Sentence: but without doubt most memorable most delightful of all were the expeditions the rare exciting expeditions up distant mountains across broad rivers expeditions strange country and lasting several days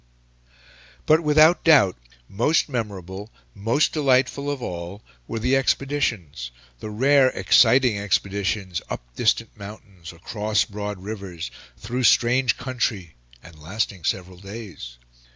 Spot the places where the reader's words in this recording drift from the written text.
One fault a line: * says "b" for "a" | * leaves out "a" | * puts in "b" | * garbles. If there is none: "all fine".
* says "through" for "expeditions"